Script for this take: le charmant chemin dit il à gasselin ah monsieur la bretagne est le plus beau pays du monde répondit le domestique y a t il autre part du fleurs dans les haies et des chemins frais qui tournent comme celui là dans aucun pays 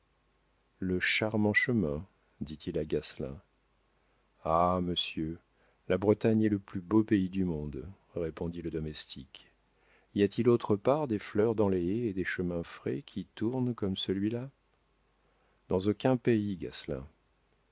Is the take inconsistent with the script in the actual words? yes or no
yes